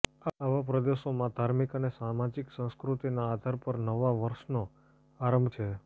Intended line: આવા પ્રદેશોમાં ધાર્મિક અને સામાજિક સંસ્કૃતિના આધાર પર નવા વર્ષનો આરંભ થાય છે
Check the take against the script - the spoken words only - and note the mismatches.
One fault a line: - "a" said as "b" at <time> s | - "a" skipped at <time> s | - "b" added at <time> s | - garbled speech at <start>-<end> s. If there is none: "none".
- "થાય" skipped at 5.5 s